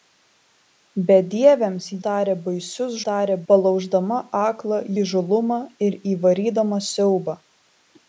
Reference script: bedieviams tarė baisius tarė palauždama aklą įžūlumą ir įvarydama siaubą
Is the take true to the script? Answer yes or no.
yes